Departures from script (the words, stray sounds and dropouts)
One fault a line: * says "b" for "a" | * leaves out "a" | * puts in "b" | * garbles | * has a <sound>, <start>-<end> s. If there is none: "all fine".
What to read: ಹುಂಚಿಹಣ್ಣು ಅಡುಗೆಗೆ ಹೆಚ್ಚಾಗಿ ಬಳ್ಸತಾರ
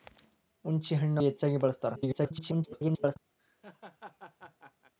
* leaves out "ಅಡುಗೆಗೆ"
* garbles
* has a laugh, 3.4-4.9 s